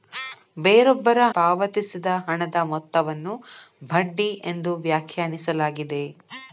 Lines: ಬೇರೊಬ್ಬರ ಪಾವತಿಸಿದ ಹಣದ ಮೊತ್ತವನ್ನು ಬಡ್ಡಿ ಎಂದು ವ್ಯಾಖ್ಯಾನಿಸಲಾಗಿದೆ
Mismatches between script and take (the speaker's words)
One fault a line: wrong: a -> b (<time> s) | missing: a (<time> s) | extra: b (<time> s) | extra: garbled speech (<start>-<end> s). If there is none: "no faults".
no faults